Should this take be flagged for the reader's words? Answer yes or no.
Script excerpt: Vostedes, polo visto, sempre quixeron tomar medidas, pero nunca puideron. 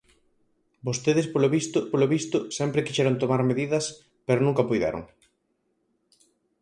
yes